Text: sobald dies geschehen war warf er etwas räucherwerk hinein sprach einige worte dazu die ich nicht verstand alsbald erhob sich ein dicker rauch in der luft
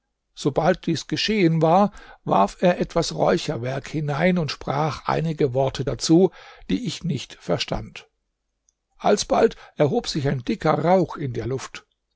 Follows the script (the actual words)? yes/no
no